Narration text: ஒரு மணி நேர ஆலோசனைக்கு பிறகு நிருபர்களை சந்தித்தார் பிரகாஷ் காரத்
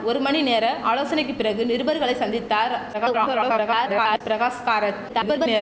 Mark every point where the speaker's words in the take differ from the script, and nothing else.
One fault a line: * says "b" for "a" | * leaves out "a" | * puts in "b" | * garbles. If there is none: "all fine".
* garbles
* garbles